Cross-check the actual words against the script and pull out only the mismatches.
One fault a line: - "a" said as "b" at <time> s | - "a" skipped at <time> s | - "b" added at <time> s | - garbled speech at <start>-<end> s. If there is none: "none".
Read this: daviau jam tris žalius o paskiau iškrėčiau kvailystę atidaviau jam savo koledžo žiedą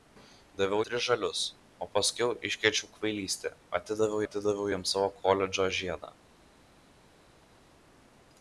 - "jam" skipped at 0.8 s
- "atidaviau" added at 4.3 s